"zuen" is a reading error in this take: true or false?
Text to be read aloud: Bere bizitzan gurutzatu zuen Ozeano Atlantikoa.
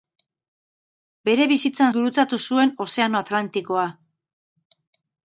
false